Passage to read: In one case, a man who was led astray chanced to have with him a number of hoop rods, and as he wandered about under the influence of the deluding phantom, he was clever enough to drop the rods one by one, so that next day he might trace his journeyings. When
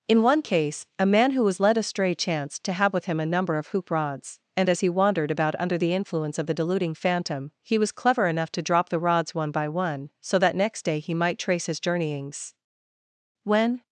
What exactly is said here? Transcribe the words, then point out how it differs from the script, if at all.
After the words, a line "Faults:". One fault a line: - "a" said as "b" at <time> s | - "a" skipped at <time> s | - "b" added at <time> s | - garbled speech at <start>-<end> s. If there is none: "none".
In one case, a man who was led astray chanced to have with him a number of hoop rods, and as he wandered about under the influence of the deluding phantom, he was clever enough to drop the rods one by one, so that next day he might trace his journeyings. When
Faults:
none